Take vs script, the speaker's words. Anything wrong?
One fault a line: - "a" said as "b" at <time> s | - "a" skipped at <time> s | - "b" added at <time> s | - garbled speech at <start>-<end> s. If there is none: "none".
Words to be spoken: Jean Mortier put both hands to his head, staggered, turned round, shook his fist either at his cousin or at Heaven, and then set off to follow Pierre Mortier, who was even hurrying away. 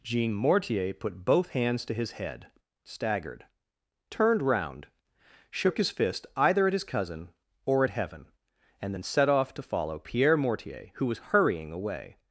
- "even" skipped at 11.3 s